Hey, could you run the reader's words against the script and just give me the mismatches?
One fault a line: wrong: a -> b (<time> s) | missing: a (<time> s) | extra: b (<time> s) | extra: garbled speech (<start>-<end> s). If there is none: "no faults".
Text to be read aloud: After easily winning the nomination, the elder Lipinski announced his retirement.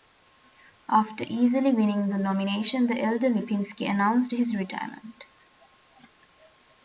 no faults